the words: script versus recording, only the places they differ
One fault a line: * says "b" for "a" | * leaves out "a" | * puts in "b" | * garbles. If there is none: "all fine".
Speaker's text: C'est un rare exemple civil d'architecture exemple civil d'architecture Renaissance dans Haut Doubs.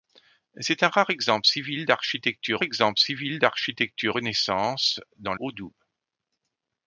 all fine